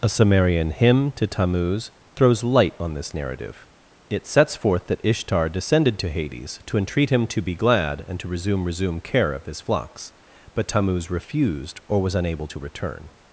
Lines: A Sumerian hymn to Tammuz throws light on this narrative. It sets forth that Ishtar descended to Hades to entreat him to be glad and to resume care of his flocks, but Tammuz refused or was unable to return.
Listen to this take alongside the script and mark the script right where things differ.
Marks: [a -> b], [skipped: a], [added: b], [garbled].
A Sumerian hymn to Tammuz throws light on this narrative. It sets forth that Ishtar descended to Hades to entreat him to be glad and to resume [added: resume] care of his flocks, but Tammuz refused or was unable to return.